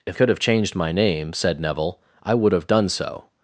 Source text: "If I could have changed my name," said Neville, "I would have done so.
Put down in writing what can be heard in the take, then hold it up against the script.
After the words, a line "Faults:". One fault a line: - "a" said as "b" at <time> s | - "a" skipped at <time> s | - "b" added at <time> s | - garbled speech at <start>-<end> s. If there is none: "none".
"If could have changed my name," said Neville, "I would have done so.
Faults:
- "I" skipped at 0.2 s